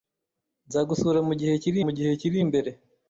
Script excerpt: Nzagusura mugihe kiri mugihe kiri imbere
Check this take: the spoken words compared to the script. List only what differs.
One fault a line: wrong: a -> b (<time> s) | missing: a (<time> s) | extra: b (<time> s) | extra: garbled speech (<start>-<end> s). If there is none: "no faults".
no faults